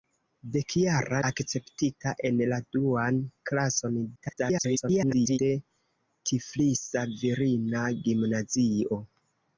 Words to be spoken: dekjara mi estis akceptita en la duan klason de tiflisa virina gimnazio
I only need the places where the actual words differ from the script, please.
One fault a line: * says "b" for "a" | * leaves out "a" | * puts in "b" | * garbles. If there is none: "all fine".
* leaves out "mi estis"
* garbles